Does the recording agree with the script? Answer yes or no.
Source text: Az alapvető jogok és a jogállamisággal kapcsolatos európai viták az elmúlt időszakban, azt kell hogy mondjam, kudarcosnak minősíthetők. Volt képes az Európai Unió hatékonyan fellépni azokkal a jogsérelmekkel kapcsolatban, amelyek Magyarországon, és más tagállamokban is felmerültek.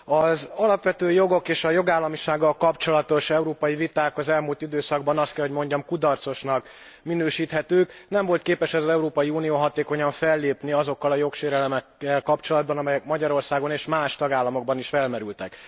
no